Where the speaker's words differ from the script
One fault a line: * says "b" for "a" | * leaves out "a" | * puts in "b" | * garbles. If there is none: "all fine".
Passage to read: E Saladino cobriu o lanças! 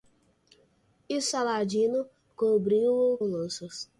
all fine